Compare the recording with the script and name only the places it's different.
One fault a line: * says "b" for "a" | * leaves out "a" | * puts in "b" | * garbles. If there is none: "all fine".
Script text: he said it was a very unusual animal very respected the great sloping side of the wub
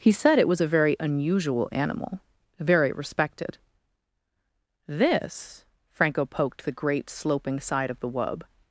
* puts in "this franco poked"